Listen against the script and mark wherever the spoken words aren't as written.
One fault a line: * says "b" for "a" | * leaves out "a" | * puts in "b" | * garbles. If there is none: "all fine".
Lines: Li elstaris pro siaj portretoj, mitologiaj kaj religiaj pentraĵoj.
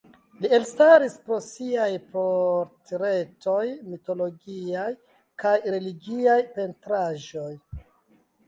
all fine